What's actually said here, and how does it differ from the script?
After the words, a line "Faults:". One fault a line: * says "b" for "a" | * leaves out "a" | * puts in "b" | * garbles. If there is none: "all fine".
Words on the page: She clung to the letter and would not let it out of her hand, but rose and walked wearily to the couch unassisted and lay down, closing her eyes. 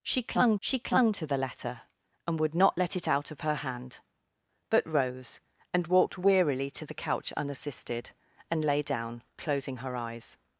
She clung she clung to the letter and would not let it out of her hand, but rose and walked wearily to the couch unassisted and lay down, closing her eyes.
Faults:
* puts in "she clung"